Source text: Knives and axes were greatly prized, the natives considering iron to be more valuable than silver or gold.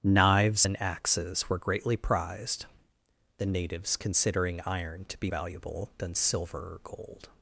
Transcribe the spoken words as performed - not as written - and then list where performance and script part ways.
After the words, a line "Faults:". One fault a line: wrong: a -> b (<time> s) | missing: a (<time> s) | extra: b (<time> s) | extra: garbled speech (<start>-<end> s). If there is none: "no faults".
Knives and axes were greatly prized, the natives considering iron to be valuable than silver or gold.
Faults:
missing: more (5.3 s)